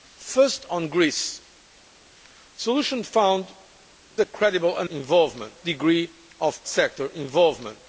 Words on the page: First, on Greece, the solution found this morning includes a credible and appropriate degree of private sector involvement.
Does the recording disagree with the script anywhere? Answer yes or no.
yes